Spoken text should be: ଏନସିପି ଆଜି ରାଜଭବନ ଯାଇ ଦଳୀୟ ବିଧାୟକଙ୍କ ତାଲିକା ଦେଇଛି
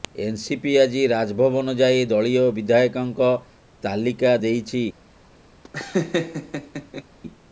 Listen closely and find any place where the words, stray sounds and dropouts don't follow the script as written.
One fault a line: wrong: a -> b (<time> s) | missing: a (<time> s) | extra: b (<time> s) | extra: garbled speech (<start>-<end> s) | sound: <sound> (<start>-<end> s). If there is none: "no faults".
sound: laugh (5.6-7.0 s)